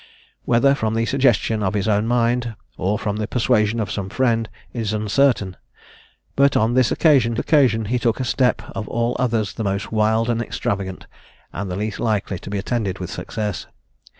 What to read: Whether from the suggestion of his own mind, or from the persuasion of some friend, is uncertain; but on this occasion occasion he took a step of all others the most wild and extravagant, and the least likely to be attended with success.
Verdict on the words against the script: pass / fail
pass